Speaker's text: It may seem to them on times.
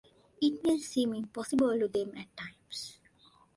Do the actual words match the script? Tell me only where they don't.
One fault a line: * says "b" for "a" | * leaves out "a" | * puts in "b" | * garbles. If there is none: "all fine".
* puts in "impossible"
* says "at" for "on"